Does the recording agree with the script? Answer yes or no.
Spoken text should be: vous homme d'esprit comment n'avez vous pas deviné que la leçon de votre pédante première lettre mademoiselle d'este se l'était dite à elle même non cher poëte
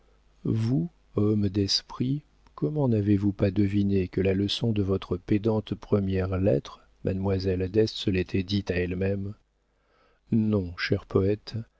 yes